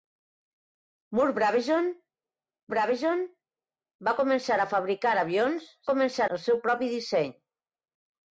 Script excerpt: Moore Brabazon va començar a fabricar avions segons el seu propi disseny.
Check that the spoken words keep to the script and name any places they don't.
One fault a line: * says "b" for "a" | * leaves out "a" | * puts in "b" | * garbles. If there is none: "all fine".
* puts in "Brabazon"
* says "començar" for "segons"